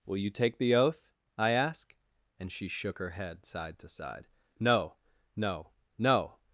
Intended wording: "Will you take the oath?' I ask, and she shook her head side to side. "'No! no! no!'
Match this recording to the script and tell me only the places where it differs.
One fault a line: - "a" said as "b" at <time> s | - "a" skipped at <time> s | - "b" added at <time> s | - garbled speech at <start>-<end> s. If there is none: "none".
none